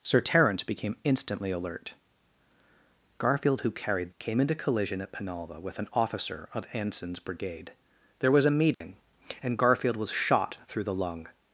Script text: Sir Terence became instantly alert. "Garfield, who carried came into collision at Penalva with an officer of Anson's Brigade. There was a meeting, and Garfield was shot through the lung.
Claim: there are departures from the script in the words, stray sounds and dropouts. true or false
true